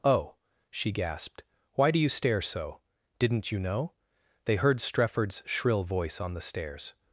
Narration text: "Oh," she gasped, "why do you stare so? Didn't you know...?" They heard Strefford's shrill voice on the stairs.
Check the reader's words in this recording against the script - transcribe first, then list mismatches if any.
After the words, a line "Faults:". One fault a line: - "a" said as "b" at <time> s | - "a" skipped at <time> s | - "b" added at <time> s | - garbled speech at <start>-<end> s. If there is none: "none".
"Oh," she gasped, "why do you stare so? Didn't you know...?" They heard Strefford's shrill voice on the stairs.
Faults:
none